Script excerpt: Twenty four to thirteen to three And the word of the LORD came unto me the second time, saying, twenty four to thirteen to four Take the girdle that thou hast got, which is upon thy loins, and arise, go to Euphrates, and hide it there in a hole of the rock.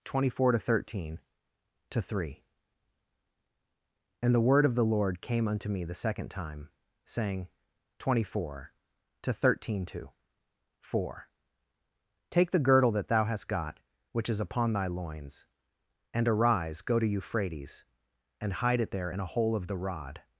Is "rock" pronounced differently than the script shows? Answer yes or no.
yes